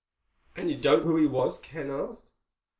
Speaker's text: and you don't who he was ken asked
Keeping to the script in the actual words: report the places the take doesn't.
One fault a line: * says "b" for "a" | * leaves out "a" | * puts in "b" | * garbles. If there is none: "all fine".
all fine